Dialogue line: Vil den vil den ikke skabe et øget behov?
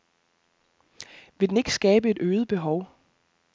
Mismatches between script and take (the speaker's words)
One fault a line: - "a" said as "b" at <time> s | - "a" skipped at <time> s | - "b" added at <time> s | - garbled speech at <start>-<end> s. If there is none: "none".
- "vil den" skipped at 1.6 s